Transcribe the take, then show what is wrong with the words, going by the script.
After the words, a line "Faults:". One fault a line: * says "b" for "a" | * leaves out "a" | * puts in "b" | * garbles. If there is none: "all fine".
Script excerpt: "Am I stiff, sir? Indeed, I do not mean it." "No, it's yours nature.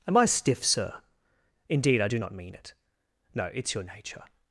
"Am I stiff, sir? Indeed, I do not mean it." "No, it's your nature.
Faults:
* says "your" for "yours"